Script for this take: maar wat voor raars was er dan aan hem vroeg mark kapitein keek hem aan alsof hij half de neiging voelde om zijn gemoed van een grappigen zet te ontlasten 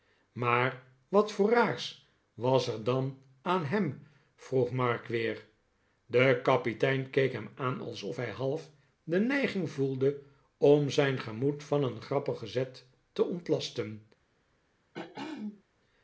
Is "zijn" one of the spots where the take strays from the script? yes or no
no